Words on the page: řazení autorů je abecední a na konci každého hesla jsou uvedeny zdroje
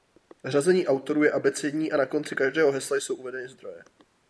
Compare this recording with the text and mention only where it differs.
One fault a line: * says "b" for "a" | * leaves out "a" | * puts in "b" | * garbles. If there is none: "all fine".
all fine